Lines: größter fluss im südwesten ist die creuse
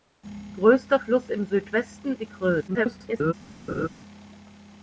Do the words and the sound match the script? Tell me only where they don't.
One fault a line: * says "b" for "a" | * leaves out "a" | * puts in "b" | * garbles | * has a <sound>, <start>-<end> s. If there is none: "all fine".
* leaves out "ist"
* garbles
* has a laugh, 3.7-3.9 s